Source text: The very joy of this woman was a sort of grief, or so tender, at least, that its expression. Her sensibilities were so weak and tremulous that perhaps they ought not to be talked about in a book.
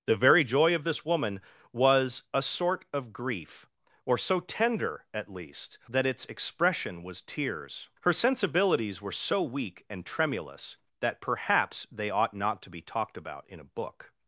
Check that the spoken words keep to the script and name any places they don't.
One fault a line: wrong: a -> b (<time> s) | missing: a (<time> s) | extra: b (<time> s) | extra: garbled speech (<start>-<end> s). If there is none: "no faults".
extra: was tears (7.0 s)